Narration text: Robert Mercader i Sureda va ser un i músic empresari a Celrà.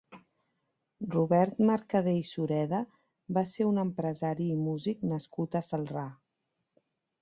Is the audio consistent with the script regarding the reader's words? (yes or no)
no